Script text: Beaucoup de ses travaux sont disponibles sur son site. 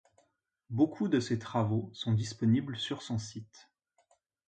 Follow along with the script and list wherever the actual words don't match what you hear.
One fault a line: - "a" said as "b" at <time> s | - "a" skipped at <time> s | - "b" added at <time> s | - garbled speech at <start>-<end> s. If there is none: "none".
none